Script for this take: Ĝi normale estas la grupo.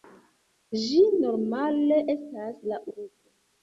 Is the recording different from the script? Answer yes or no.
no